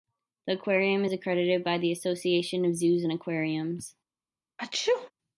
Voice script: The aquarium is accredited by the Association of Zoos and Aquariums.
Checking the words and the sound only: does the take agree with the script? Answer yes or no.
no